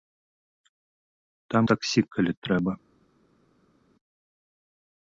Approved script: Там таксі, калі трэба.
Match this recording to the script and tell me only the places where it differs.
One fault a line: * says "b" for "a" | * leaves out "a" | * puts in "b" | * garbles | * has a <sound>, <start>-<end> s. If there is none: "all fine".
all fine